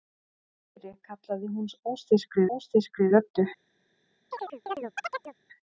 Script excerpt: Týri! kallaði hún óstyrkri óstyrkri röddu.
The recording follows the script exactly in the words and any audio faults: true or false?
false